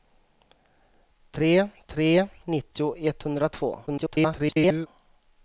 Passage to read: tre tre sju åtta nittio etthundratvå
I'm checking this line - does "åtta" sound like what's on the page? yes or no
no